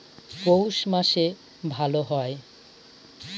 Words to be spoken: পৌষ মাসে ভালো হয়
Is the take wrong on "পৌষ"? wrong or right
right